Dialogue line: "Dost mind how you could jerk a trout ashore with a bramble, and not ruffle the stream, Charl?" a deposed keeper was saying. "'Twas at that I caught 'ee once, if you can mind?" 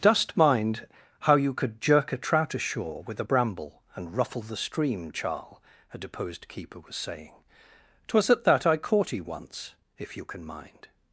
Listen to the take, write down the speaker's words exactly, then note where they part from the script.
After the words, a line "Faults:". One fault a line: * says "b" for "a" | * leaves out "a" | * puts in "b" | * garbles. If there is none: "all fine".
"Dost mind how you could jerk a trout ashore with a bramble, and ruffle the stream, Charl?" a deposed keeper was saying. "'Twas at that I caught 'ee once, if you can mind?"
Faults:
* leaves out "not"